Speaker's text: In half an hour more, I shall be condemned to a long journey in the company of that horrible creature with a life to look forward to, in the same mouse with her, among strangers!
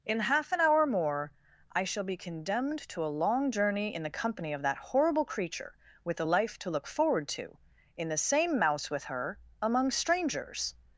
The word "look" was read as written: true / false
true